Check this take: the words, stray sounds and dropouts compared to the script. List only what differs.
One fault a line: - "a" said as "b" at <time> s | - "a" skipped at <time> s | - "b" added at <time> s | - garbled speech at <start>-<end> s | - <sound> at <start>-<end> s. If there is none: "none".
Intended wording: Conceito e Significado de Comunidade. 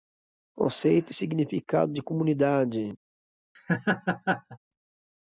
- laugh at 3.5-4.6 s